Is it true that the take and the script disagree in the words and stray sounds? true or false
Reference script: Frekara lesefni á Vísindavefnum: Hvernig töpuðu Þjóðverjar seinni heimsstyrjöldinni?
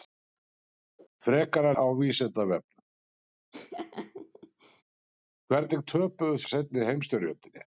true